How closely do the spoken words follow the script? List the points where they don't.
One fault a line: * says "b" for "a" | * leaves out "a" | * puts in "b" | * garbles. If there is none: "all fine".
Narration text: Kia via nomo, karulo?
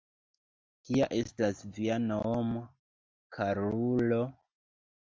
* puts in "estas"